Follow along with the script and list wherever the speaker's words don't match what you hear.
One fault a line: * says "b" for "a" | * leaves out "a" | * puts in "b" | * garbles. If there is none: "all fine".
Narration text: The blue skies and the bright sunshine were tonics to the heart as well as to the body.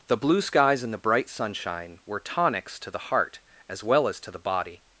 all fine